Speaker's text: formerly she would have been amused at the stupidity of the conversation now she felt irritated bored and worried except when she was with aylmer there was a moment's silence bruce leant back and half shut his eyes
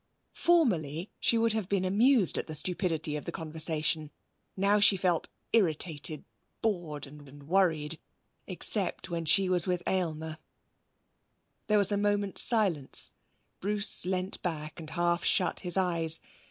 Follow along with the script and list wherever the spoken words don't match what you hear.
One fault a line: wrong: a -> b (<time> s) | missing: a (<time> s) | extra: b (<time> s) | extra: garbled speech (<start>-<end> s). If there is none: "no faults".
extra: and (7.3 s)